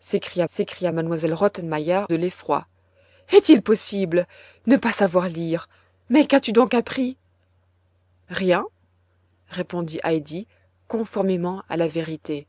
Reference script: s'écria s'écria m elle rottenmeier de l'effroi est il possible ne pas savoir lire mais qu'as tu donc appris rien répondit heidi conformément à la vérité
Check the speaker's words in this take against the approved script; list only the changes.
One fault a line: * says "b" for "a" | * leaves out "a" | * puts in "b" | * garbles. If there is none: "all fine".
all fine